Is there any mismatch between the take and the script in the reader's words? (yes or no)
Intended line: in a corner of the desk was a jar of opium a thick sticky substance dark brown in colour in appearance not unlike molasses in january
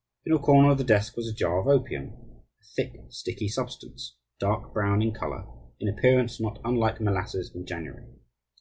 no